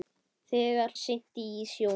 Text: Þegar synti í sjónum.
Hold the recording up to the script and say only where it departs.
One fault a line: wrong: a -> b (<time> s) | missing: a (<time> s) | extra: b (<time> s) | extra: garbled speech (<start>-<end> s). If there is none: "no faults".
no faults